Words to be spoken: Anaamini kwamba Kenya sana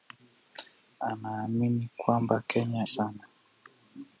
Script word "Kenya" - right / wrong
right